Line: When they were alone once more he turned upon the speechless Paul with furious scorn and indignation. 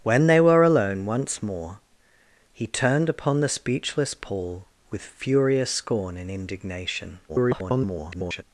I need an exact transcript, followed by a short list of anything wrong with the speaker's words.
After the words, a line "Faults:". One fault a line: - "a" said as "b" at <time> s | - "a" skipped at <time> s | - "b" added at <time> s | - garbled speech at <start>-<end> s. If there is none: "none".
When they were alone once more he turned upon the speechless Paul with furious scorn and indignation. [garbled]
Faults:
- garbled speech at 7.3-8.4 s